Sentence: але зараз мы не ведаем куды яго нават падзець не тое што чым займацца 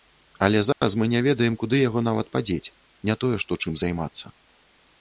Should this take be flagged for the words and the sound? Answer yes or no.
yes